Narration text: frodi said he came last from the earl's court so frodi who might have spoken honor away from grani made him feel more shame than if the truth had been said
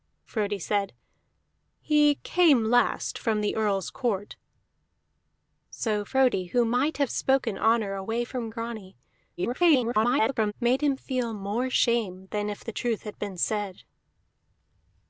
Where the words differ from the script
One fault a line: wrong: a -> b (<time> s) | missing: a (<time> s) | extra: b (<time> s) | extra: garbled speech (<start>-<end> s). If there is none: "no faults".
extra: garbled speech (9.4-10.5 s)